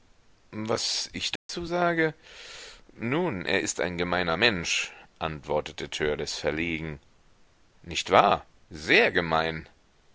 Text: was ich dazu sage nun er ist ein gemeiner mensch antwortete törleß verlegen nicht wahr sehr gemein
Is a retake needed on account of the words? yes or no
no